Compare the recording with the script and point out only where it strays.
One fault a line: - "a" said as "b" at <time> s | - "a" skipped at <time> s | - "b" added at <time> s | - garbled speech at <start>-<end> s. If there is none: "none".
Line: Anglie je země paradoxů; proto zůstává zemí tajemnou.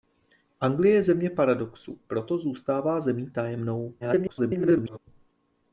- garbled speech at 4.0-5.0 s